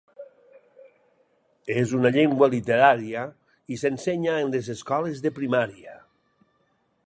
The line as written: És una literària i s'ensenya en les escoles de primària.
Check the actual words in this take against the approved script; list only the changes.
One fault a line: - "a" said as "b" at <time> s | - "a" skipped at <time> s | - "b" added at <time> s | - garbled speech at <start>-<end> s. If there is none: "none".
- "llengua" added at 2.1 s